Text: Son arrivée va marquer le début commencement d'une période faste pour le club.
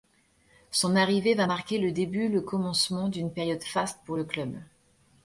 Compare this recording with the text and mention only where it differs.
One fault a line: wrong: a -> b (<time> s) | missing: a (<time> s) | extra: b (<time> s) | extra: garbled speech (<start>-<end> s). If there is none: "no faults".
extra: le (2.3 s)